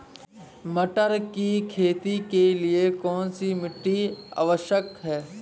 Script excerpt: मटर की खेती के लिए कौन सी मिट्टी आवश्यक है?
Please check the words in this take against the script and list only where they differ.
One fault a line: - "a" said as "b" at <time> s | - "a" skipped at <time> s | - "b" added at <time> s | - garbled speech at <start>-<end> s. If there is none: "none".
none